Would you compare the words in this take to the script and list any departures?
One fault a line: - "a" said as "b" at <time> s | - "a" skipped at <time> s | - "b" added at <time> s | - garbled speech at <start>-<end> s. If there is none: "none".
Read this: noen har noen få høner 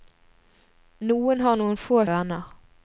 none